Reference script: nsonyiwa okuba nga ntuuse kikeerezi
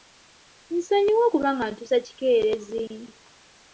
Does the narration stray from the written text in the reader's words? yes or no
no